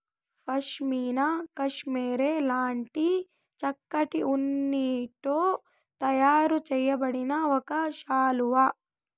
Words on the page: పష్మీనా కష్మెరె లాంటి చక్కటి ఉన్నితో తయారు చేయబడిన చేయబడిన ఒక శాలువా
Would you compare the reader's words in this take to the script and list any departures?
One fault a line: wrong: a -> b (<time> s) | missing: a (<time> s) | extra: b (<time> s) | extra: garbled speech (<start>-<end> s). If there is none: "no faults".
missing: చేయబడిన (7.3 s)